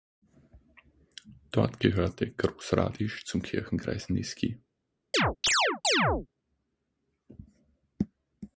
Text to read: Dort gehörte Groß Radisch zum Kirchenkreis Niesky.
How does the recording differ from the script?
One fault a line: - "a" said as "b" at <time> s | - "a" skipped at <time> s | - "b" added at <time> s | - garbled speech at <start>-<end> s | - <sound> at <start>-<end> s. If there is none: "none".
- chirp at 5.1-6.3 s